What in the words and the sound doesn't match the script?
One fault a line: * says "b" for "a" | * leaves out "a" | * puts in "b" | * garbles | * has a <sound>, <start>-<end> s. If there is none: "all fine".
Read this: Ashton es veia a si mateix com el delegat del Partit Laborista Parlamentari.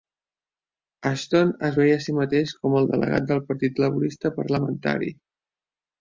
all fine